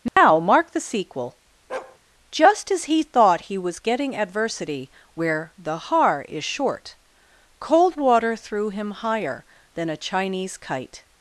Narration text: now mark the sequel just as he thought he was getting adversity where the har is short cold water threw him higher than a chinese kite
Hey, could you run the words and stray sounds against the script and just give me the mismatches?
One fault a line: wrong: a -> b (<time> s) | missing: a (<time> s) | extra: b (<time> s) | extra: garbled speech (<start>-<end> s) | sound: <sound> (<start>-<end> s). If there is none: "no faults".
sound: dropout (0.1-0.2 s)
sound: bark (1.7-2.0 s)